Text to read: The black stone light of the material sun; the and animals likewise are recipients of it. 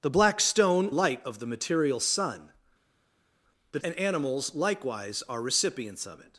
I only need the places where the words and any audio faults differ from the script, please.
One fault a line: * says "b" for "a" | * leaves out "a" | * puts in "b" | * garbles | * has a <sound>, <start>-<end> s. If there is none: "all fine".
all fine